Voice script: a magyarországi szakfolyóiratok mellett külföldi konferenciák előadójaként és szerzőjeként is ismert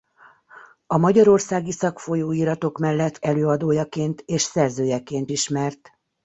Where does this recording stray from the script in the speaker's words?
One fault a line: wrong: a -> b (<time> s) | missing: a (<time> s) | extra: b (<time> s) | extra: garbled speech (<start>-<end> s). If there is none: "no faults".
missing: külföldi konferenciák (3.2 s)
missing: is (5.3 s)